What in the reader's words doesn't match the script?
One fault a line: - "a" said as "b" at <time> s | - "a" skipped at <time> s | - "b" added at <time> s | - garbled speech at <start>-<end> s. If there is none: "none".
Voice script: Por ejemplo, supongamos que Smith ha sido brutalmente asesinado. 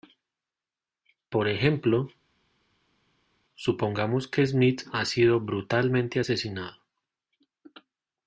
none